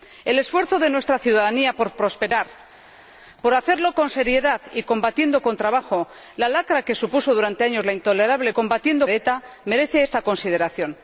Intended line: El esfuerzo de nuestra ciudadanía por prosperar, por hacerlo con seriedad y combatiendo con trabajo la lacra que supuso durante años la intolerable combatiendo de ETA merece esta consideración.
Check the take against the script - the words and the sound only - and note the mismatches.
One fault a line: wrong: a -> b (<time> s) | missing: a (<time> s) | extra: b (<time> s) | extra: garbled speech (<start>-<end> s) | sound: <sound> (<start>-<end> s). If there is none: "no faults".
no faults